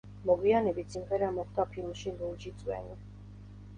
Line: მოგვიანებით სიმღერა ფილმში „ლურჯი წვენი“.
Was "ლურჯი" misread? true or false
false